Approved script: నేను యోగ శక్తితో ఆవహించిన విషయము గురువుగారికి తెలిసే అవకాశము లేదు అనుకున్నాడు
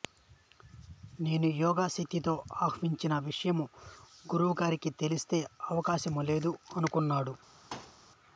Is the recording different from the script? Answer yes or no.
no